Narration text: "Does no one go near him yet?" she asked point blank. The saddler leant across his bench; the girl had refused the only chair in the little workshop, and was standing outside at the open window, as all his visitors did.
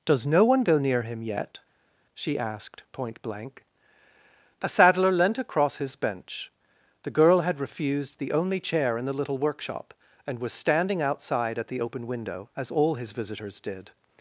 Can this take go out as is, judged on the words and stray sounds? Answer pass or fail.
fail